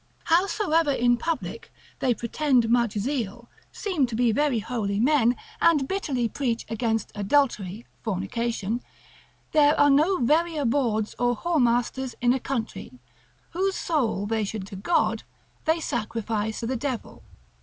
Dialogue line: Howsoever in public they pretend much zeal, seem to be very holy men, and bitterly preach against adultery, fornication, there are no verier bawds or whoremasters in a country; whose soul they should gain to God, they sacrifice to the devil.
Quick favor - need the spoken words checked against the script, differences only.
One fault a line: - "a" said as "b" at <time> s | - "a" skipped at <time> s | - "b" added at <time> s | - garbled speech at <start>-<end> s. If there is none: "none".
- "gain" skipped at 14.7 s
- "to" skipped at 16.6 s